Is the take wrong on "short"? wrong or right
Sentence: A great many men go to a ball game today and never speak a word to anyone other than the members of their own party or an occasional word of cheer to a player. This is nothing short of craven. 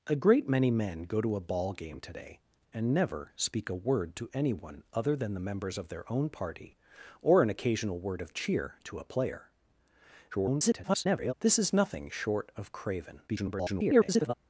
right